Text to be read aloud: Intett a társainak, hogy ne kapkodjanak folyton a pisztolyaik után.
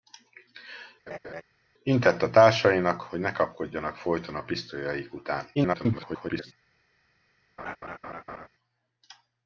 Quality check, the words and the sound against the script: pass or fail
fail